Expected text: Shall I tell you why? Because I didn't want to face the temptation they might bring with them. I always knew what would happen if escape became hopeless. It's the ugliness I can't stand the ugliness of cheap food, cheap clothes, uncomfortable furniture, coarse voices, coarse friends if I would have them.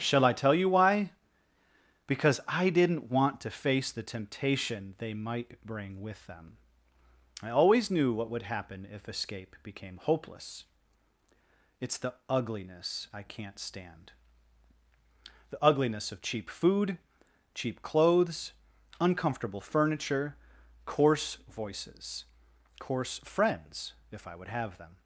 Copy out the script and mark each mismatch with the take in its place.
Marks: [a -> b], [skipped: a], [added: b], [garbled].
Shall I tell you why? Because I didn't want to face the temptation they might bring with them. I always knew what would happen if escape became hopeless. It's the ugliness I can't stand the ugliness of cheap food, cheap clothes, uncomfortable furniture, coarse voices, coarse friends if I would have them.